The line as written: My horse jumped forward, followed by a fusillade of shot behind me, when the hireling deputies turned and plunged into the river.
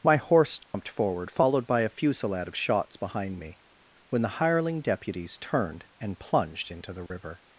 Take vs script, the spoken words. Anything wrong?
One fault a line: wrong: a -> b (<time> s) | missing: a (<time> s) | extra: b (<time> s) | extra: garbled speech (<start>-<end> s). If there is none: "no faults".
wrong: shot -> shots (2.5 s)